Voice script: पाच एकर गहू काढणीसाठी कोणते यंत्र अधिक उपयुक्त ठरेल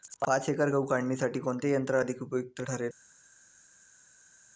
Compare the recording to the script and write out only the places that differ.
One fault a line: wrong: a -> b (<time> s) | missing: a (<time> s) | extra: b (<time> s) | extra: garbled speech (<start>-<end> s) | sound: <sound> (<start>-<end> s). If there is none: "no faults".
no faults